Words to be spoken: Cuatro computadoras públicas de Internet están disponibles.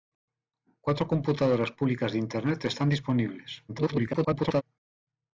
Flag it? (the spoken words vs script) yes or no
yes